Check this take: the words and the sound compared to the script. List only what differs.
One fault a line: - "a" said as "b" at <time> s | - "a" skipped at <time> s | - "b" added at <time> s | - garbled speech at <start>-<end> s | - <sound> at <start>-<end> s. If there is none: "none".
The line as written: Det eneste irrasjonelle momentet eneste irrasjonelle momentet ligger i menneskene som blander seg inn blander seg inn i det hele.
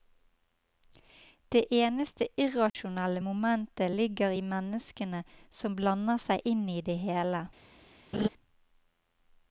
- dropout at 2.7-2.8 s
- "eneste irrasjonelle momentet" skipped at 3.9 s
- "blander seg inn" skipped at 6.7 s
- laugh at 8.1-8.3 s